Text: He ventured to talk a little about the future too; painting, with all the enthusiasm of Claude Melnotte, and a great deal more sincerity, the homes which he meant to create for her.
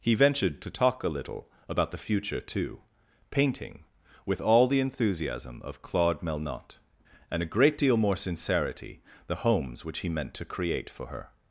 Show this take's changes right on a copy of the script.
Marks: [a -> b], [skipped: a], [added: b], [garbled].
He ventured to talk a little about the future too; painting, with all the enthusiasm of Claude Melnotte, and a great deal more sincerity, the homes which he meant to create for her.